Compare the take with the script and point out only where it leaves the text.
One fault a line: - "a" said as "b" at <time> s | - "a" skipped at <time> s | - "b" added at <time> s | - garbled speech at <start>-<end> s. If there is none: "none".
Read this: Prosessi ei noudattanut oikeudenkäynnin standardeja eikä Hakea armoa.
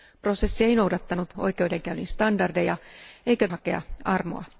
none